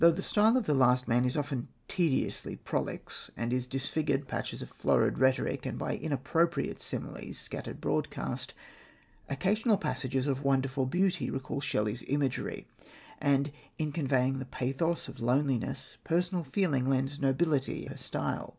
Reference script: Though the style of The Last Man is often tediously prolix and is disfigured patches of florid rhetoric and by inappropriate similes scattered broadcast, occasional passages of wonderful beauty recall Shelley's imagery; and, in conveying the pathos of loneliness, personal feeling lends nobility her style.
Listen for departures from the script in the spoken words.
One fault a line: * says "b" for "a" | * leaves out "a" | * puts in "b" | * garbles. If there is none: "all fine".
all fine